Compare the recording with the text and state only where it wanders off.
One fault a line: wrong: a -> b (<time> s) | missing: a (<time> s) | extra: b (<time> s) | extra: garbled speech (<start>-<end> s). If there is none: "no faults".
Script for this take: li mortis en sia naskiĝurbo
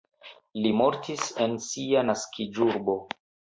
no faults